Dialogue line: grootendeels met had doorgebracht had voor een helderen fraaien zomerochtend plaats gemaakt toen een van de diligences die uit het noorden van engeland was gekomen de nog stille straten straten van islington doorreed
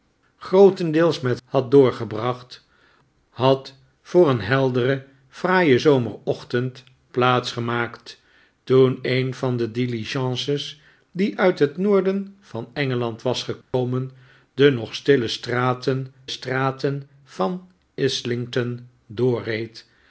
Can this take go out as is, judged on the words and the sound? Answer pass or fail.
fail